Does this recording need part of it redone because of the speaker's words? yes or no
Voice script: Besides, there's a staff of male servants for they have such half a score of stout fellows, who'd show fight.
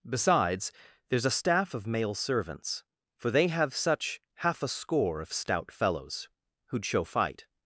no